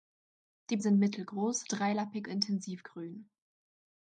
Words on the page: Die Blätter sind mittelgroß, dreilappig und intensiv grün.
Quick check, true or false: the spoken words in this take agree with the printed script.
false